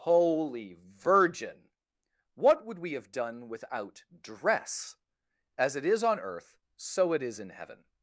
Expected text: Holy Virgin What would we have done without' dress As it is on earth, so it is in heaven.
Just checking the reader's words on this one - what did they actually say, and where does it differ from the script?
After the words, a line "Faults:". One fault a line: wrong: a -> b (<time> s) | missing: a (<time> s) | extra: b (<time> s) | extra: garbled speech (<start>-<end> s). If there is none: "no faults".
Holy Virgin What would we have done without' dress As it is on earth, so it is in heaven.
Faults:
no faults